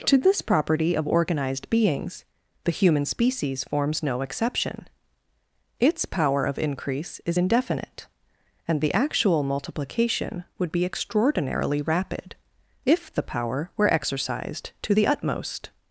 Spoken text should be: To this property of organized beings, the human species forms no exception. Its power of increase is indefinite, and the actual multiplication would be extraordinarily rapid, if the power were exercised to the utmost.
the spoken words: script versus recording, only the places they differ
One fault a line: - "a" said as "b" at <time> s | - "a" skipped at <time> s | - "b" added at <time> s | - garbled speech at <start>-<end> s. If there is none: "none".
none